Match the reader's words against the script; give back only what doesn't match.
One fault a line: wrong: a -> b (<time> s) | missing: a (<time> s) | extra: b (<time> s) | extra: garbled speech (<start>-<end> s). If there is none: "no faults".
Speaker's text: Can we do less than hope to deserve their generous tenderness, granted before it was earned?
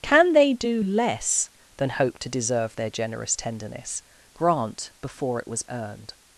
wrong: we -> they (0.3 s)
wrong: granted -> grant (4.3 s)